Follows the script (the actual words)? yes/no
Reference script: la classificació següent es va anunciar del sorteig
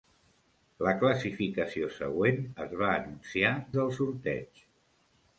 yes